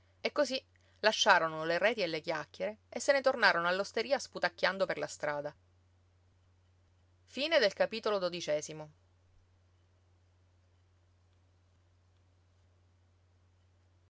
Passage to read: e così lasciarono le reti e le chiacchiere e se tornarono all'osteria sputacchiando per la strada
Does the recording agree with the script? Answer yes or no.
no